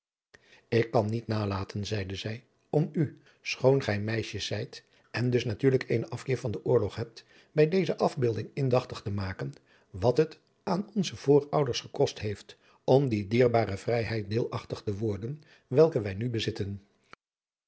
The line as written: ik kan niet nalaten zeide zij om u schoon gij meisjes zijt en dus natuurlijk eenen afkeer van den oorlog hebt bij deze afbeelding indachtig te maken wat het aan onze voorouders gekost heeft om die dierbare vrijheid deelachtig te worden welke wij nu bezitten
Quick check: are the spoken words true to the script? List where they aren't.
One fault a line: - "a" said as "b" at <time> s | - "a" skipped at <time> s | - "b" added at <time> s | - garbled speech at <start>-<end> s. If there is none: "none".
none